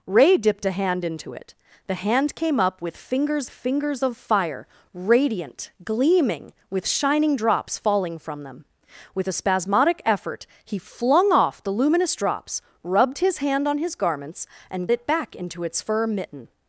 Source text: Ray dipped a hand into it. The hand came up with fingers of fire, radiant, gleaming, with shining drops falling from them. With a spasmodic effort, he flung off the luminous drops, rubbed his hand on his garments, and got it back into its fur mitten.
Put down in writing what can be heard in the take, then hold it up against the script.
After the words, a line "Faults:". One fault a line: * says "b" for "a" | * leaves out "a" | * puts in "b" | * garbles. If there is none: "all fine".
Ray dipped a hand into it. The hand came up with fingers fingers of fire, radiant, gleaming, with shining drops falling from them. With a spasmodic effort, he flung off the luminous drops, rubbed his hand on his garments, and it back into its fur mitten.
Faults:
* puts in "fingers"
* leaves out "got"